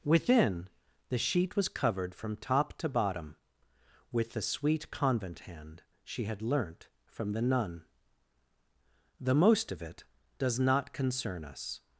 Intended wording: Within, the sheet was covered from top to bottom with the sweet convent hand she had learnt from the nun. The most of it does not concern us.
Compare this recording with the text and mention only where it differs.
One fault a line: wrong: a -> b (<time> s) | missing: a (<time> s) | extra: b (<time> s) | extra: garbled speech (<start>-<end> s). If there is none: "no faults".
no faults